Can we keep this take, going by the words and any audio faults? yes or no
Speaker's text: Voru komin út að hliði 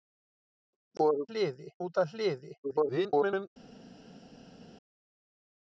no